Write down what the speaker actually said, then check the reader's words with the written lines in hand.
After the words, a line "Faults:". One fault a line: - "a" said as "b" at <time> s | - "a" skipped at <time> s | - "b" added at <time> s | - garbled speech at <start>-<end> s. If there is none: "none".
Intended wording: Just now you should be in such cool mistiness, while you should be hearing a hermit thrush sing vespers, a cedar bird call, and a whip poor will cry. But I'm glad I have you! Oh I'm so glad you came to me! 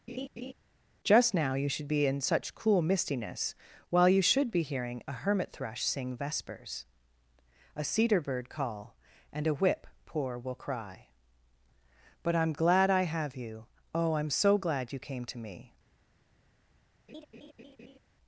Just now you should be in such cool mistiness, while you should be hearing a hermit thrush sing vespers, a cedar bird call, and a whip poor will cry. But I'm glad I have you! Oh I'm so glad you came to me!
Faults:
none